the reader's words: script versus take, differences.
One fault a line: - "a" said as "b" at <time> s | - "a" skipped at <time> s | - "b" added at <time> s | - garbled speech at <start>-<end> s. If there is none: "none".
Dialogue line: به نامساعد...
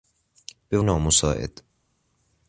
none